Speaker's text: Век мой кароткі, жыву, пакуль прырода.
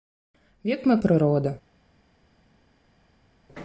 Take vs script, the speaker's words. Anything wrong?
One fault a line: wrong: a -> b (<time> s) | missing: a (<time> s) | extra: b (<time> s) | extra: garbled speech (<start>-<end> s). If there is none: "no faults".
missing: кароткі жыву пакуль (1.0 s)